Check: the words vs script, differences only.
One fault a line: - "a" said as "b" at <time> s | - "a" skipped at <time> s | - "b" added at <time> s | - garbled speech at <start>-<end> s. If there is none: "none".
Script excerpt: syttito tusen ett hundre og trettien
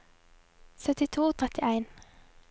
- "tusen ett hundre" skipped at 1.3 s